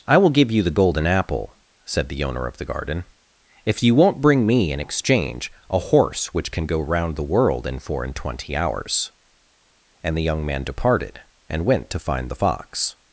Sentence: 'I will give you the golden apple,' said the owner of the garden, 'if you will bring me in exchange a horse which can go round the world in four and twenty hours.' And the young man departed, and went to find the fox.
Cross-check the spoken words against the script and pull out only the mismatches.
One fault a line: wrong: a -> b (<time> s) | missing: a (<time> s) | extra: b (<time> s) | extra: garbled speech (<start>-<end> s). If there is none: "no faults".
wrong: will -> won't (3.9 s)